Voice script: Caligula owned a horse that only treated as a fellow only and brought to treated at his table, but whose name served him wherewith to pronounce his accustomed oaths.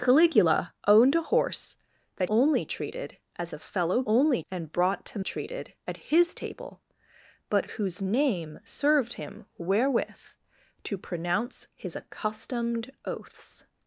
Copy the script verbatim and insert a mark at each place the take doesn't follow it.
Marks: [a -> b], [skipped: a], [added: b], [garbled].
Caligula owned a horse that only treated as a fellow only and brought to treated at his table, but whose name served him wherewith to pronounce his accustomed oaths.